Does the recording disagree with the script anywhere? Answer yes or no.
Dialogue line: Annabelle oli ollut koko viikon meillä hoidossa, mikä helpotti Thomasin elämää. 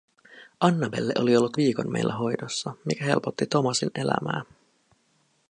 yes